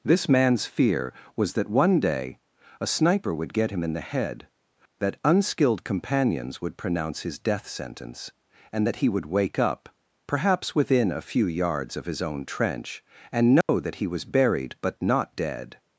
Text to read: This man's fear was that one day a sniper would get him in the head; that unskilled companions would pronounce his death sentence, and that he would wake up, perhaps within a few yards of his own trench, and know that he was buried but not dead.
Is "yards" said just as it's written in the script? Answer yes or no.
yes